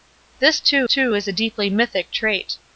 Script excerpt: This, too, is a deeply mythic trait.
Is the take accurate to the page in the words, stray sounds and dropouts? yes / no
no